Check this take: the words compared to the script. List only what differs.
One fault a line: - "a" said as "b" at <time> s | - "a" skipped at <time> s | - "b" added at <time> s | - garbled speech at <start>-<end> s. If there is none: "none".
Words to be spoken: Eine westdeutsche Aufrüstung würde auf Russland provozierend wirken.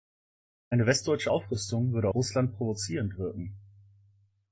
- "auf" skipped at 2.1 s